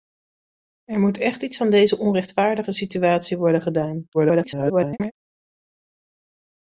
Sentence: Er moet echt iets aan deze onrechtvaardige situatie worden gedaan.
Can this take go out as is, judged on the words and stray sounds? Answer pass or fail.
fail